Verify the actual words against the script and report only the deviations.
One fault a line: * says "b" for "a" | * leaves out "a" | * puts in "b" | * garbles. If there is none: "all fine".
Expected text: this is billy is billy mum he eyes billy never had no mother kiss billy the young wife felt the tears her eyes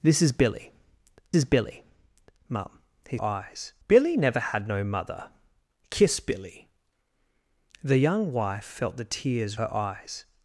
all fine